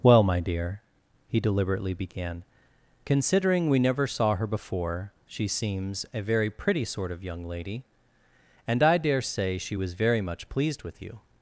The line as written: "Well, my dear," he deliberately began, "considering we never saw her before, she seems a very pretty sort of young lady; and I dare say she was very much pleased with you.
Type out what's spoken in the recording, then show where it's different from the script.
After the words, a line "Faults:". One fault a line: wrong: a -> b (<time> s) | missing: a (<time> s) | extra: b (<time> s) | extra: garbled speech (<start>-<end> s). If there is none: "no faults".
"Well, my dear," he deliberately began, "considering we never saw her before, she seems a very pretty sort of young lady; and I dare say she was very much pleased with you.
Faults:
no faults